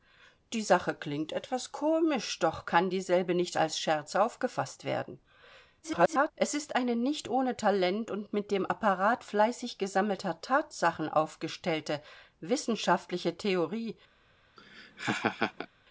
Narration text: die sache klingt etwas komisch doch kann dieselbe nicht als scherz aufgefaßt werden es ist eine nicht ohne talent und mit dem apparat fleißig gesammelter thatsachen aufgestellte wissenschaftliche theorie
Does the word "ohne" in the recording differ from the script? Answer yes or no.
no